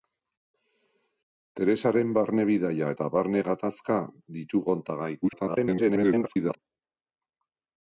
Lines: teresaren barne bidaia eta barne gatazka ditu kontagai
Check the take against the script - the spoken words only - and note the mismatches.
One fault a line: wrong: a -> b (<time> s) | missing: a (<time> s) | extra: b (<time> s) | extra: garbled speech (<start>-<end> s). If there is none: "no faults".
extra: garbled speech (5.2-6.6 s)